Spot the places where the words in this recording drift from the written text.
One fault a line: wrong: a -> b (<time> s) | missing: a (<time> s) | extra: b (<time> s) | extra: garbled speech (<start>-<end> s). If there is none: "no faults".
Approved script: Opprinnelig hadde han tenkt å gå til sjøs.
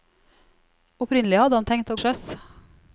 missing: gå til (2.0 s)